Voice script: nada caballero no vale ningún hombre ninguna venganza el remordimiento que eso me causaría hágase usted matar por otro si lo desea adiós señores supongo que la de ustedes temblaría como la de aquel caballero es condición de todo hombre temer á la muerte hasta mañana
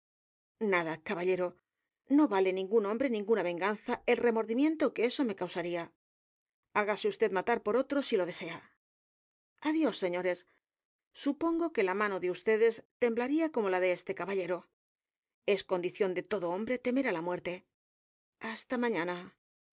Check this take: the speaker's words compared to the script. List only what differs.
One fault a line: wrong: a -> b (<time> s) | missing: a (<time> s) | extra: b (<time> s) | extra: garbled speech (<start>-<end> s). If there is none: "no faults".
extra: mano (12.0 s)
wrong: aquel -> este (14.0 s)